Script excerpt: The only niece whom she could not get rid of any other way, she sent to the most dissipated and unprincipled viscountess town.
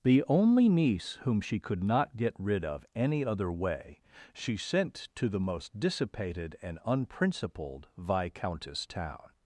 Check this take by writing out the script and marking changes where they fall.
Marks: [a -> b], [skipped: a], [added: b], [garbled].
The only niece whom she could not get rid of any other way, she sent to the most dissipated and unprincipled viscountess town.